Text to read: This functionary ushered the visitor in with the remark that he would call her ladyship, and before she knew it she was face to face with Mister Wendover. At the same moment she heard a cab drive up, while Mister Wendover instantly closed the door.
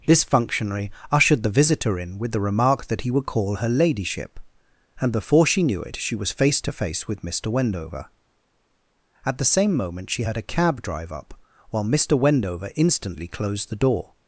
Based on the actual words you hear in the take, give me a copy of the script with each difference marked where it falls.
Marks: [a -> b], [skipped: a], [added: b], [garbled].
This functionary ushered the visitor in with the remark that he would call her ladyship, and before she knew it she was face to face with Mister Wendover. At the same moment she heard a cab drive up, while Mister Wendover instantly closed the door.